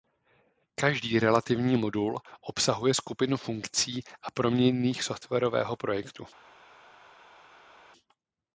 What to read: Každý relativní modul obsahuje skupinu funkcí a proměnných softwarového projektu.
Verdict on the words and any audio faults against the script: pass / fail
pass